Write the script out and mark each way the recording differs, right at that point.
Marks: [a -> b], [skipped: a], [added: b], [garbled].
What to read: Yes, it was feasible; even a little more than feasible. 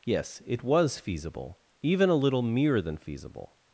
Yes, it was feasible; even a little [more -> mere] than feasible.